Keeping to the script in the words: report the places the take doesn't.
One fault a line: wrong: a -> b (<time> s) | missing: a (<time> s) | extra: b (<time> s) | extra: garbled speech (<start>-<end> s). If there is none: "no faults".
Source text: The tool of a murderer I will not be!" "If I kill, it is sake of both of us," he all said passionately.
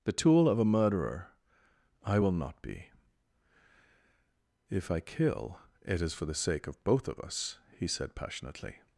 extra: for the (6.1 s)
missing: all (7.9 s)